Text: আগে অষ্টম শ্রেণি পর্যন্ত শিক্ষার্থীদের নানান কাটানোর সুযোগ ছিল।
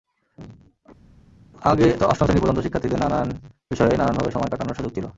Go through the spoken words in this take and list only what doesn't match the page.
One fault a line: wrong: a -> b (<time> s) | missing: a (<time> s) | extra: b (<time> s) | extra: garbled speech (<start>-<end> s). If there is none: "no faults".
extra: বিষয়ে নানানভাবে সময় (3.7 s)